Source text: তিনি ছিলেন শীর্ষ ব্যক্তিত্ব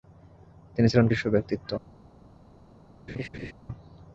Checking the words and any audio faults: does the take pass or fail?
fail